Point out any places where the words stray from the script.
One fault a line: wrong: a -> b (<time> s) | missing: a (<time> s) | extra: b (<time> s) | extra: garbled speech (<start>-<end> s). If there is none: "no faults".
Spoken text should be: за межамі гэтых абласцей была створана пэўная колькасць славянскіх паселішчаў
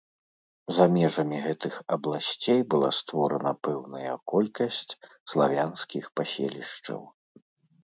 no faults